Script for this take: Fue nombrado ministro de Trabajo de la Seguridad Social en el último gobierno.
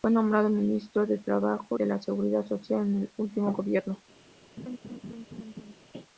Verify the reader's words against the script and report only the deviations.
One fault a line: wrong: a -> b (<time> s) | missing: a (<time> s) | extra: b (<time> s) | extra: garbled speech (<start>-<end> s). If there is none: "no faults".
no faults